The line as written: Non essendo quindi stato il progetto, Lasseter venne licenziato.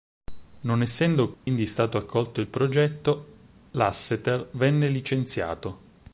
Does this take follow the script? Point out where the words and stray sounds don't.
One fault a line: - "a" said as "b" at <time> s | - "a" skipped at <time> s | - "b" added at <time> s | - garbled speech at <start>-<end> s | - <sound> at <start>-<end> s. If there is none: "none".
- dropout at 1.3-1.5 s
- "accolto" added at 2.0 s